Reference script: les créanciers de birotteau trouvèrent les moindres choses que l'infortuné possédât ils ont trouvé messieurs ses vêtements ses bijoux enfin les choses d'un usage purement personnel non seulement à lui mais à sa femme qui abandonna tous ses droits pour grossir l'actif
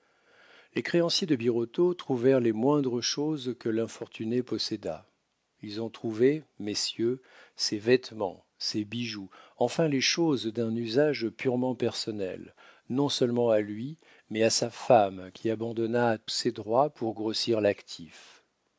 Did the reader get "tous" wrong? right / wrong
wrong